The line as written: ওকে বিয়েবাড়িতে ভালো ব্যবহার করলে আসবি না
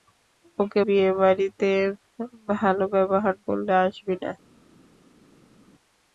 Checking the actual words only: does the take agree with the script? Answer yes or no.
yes